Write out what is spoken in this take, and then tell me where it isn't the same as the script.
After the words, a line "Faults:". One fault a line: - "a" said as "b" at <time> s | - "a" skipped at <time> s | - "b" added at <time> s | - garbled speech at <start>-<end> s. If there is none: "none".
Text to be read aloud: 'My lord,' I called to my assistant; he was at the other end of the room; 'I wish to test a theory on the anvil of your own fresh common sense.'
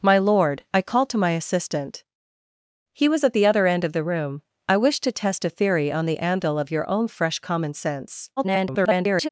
'My lord,' I called to my assistant; he was at the other end of the room; 'I wish to test a theory on the anvil of your own fresh common sense.' [garbled]
Faults:
- garbled speech at 8.4-9.3 s